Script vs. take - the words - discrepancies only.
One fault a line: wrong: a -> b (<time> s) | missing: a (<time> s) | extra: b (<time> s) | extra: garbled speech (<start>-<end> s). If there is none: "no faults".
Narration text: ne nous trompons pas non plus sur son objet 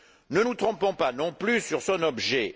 no faults